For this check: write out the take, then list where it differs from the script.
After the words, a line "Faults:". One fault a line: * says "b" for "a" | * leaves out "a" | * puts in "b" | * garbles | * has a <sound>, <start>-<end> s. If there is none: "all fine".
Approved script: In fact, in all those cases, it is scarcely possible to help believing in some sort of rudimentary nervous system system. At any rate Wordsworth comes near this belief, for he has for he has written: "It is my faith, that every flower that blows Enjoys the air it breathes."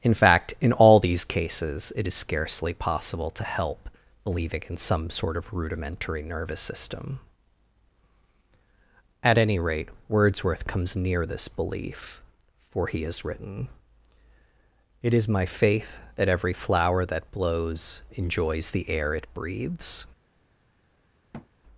In fact, in all these cases, it is scarcely possible to help believing in some sort of rudimentary nervous system. At any rate Wordsworth comes near this belief, for he has written: "It is my faith, that every flower that blows Enjoys the air it breathes."
Faults:
* says "these" for "those"
* leaves out "system"
* leaves out "for he has"
* has a thud, 21.3-21.5 s